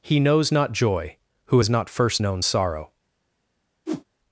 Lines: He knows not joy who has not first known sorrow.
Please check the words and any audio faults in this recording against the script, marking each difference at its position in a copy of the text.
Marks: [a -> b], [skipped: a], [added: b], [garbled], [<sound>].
He knows not joy who has not first known sorrow. [whoosh]